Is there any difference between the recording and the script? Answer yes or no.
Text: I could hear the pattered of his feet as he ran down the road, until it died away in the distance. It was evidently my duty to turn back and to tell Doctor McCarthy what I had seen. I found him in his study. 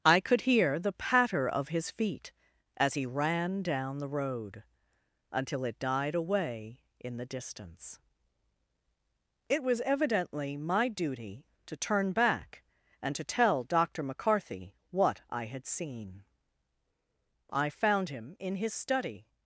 yes